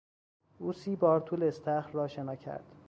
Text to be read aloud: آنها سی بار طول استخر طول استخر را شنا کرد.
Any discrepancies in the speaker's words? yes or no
yes